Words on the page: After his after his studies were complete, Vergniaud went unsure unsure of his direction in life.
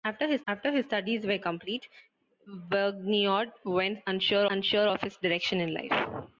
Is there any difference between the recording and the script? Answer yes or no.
no